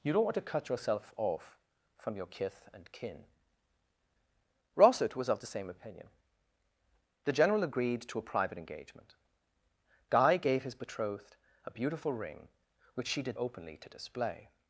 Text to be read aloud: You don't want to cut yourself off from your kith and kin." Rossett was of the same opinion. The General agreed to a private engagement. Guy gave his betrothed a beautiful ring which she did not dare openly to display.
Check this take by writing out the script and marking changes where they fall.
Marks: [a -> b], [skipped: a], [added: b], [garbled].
You don't want to cut yourself off from your kith and kin." Rossett was of the same opinion. The General agreed to a private engagement. Guy gave his betrothed a beautiful ring which she did [skipped: not dare] openly to display.